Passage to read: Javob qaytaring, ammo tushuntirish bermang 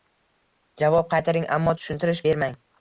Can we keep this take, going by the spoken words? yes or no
yes